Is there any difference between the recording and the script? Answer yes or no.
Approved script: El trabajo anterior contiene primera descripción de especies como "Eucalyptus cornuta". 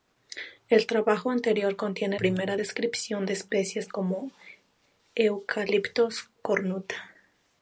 no